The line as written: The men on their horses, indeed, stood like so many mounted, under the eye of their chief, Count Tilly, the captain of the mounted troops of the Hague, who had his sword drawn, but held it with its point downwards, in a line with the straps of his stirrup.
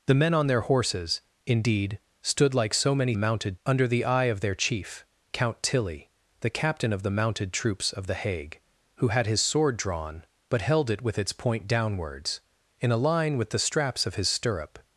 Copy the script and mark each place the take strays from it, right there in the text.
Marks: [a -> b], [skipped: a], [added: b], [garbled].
The men on their horses, indeed, stood like so many mounted, under the eye of their chief, Count Tilly, the captain of the mounted troops of the Hague, who had his sword drawn, but held it with its point downwards, in a line with the straps of his stirrup.